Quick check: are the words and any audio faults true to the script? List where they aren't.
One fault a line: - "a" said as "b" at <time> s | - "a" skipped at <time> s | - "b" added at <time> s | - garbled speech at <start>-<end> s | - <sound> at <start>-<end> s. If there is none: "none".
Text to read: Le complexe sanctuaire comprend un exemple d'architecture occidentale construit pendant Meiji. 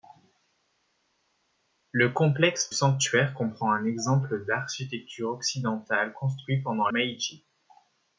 none